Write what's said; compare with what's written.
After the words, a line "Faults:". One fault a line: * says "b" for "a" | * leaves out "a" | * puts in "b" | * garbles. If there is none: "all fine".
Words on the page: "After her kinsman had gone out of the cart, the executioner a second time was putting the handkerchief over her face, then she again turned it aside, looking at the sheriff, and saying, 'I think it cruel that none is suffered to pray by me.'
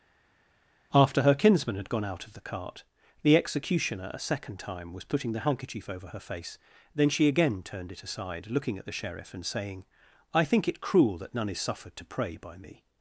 "After her kinsman had gone out of the cart, the executioner a second time was putting the handkerchief over her face, then she again turned it aside, looking at the sheriff, and saying, 'I think it cruel that none is suffered to pray by me.'
Faults:
all fine